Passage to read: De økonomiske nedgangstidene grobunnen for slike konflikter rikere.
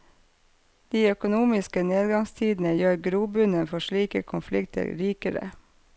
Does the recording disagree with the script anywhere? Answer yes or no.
yes